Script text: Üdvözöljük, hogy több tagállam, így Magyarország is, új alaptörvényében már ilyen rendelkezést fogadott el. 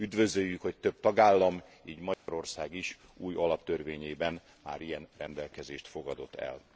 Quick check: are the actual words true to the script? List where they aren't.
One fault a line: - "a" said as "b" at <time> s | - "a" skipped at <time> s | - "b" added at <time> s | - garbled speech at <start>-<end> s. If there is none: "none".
none